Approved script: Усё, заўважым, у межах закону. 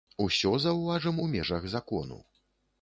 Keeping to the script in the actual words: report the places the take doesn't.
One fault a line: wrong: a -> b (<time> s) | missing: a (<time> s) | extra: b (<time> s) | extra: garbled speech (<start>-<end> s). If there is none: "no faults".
no faults